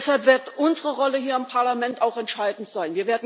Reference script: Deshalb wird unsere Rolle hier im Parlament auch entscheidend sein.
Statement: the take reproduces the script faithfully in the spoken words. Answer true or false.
true